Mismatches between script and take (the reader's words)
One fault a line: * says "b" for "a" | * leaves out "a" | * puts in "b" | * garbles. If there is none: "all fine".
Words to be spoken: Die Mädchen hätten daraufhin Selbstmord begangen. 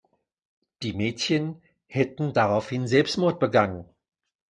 all fine